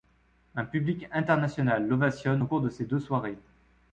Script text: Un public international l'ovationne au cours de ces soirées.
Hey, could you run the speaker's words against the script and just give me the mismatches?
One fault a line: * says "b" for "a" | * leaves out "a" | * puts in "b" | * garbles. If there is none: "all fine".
* puts in "deux"